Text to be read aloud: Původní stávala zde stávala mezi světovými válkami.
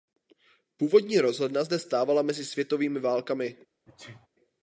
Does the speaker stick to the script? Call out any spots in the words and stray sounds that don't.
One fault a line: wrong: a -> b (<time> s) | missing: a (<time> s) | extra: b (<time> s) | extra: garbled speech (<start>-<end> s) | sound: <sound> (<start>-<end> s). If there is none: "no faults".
wrong: stávala -> rozhledna (1.2 s)
sound: sneeze (3.9-4.3 s)